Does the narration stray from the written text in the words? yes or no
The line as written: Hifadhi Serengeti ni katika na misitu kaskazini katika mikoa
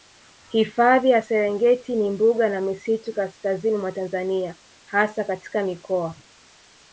yes